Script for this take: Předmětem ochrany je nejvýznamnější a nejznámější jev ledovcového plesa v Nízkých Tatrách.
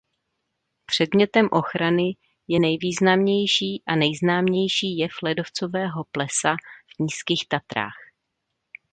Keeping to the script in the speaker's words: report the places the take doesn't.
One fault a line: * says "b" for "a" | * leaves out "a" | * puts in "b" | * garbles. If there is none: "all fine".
all fine